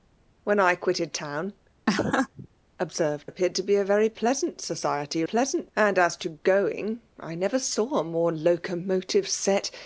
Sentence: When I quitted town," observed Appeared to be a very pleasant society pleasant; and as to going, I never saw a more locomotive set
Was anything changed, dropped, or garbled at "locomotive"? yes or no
no